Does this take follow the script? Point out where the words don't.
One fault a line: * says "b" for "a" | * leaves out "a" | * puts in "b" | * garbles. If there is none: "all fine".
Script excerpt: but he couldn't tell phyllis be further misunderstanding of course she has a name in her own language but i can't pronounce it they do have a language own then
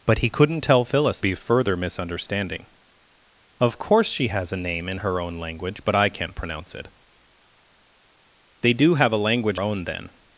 all fine